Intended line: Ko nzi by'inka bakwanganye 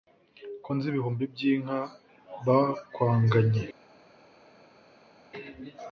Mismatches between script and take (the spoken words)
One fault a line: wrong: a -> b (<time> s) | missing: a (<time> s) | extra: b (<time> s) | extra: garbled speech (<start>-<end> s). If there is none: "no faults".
extra: ibihumbi (0.9 s)